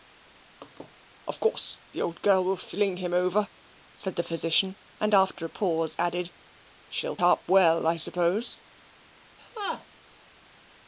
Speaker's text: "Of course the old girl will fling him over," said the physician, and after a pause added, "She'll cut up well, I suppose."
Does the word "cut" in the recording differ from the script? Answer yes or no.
yes